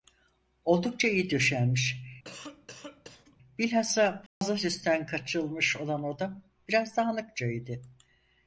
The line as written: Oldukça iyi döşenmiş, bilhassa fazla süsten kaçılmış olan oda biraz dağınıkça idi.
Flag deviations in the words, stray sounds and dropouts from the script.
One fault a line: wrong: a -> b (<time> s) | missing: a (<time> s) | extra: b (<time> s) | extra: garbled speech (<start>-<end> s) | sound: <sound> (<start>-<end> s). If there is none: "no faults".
sound: cough (2.2-3.4 s)
sound: dropout (4.3-4.4 s)